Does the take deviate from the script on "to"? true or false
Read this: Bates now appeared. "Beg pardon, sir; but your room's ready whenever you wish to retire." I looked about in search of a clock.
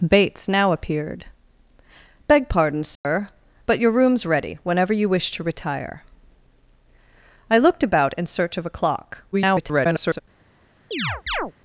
false